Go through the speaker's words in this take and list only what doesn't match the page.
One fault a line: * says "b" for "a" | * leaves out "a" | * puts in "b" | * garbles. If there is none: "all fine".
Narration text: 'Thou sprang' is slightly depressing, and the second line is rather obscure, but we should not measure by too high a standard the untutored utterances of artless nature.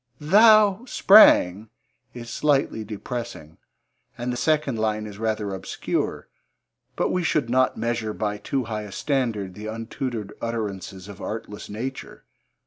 all fine